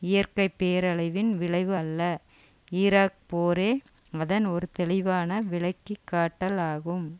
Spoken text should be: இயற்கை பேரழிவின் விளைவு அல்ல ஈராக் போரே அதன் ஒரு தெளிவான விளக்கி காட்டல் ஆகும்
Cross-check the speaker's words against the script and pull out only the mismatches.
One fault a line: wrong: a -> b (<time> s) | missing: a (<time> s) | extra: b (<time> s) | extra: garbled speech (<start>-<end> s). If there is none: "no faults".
no faults